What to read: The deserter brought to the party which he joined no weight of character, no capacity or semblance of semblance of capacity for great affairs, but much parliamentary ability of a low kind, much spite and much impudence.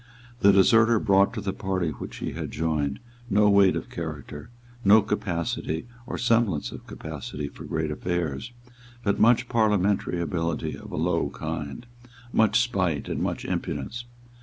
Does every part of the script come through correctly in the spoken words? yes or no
no